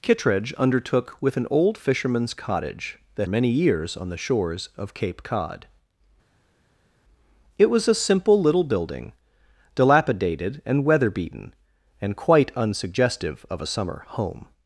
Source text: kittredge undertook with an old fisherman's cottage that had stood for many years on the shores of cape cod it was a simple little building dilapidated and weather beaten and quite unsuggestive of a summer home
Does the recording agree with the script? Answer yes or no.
no